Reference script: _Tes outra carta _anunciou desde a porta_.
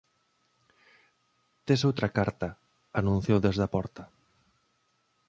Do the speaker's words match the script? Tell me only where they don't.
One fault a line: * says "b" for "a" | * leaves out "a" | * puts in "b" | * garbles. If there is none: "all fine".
all fine